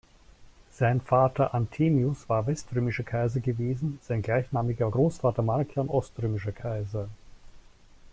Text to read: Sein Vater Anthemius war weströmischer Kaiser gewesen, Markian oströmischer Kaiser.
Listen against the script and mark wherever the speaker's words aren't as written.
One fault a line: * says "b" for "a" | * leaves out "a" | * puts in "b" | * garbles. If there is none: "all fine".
* puts in "sein gleichnamiger Großvater"